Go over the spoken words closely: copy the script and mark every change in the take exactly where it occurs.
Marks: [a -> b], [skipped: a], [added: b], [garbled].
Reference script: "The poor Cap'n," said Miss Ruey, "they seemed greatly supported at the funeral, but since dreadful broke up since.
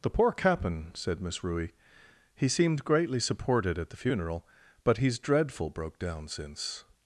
"The poor Cap'n," said Miss Ruey, ["they -> he] seemed greatly supported at the funeral, but [since -> he's] dreadful broke [up -> down] since.